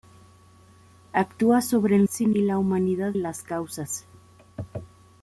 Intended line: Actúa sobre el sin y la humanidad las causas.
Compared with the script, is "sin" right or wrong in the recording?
right